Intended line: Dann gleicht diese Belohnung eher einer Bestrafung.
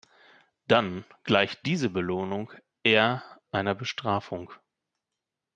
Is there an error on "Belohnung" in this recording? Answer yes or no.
no